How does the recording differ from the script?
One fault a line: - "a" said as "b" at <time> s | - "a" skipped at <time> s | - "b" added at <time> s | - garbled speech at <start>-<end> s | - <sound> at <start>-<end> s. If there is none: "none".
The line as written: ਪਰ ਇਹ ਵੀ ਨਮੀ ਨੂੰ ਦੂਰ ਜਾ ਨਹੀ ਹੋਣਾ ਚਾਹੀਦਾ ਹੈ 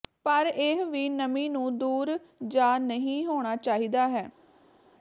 none